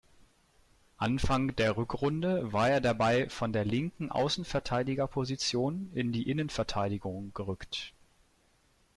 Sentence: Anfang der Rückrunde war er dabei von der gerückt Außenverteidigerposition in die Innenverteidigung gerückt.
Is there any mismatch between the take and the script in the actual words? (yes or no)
yes